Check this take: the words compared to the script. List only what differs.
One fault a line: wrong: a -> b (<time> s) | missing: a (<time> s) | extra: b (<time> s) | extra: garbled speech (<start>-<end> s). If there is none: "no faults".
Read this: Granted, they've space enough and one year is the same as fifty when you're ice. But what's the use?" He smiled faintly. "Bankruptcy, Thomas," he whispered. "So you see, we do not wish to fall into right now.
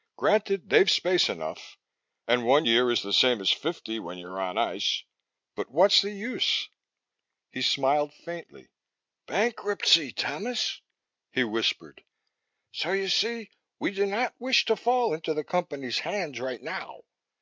extra: on (4.4 s)
extra: the Company's hands (15.3 s)